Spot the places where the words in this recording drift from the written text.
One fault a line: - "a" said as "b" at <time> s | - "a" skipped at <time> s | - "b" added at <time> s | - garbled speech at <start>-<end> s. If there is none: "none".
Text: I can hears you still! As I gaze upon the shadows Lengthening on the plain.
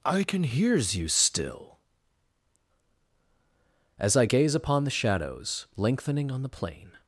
none